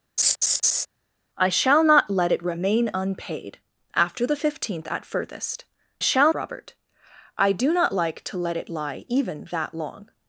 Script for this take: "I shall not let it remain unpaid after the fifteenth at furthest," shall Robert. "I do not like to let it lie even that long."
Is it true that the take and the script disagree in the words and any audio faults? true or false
true